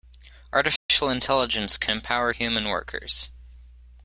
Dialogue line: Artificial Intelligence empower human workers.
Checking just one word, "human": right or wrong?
right